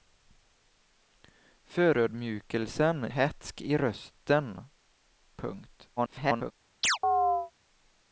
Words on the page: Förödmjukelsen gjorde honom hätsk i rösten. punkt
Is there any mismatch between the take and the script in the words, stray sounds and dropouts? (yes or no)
yes